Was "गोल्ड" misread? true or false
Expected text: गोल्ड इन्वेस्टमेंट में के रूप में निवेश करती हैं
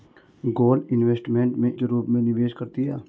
false